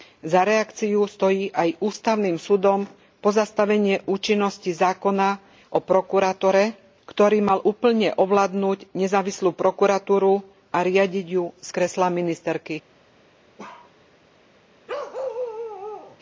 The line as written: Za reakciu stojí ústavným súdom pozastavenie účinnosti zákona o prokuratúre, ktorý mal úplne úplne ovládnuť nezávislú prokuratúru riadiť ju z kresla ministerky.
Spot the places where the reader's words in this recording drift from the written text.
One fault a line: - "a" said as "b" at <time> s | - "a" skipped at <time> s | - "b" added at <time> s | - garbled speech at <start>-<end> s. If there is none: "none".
- "aj" added at 1.5 s
- "úplne" skipped at 8.1 s
- "a" added at 10.7 s